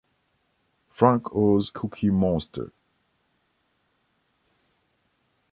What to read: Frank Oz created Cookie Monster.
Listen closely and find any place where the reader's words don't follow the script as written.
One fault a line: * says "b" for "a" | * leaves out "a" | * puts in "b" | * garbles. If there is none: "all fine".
* leaves out "created"